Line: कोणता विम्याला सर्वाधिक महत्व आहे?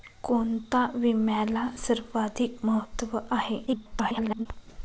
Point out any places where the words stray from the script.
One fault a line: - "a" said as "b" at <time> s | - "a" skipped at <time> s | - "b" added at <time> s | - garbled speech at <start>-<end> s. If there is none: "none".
- garbled speech at 3.7-4.5 s